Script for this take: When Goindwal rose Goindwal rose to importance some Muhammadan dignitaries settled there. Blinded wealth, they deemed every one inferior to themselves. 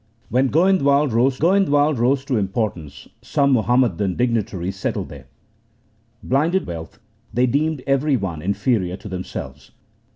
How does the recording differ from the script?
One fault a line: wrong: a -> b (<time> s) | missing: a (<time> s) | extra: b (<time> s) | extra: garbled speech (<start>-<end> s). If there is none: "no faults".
no faults